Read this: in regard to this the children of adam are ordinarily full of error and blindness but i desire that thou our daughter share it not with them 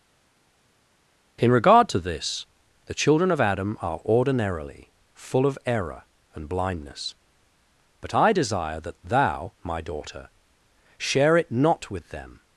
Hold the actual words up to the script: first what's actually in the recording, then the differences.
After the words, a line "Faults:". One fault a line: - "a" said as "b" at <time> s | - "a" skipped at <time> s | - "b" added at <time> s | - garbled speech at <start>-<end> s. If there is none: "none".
in regard to this the children of adam are ordinarily full of error and blindness but i desire that thou my daughter share it not with them
Faults:
- "our" said as "my" at 9.6 s